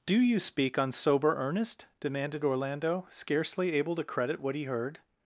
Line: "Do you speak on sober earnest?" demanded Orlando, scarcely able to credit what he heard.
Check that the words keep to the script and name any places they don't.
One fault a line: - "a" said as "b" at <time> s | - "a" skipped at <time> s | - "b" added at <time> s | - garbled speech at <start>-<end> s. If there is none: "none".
none